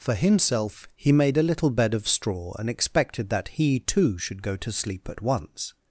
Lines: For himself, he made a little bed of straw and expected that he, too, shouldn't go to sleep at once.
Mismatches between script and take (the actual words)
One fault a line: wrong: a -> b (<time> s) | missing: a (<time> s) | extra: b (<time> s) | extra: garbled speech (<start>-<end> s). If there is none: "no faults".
wrong: shouldn't -> should (4.2 s)